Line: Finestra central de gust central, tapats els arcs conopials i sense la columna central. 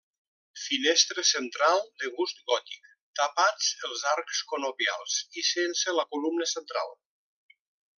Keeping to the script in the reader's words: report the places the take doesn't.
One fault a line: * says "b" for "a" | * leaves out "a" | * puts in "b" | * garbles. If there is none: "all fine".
* says "gòtic" for "central"